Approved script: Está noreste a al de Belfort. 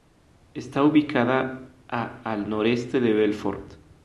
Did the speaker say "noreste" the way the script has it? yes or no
no